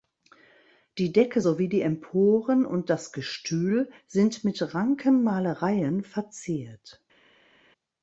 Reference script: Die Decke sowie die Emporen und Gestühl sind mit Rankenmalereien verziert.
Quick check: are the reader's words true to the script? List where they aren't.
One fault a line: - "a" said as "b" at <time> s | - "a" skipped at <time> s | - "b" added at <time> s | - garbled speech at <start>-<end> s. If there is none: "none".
- "das" added at 2.9 s